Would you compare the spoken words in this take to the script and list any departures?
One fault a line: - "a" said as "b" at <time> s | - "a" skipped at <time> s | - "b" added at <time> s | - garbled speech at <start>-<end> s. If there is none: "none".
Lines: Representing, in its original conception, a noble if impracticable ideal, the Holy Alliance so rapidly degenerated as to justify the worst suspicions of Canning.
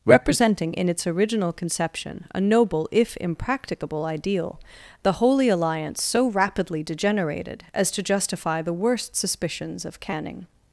none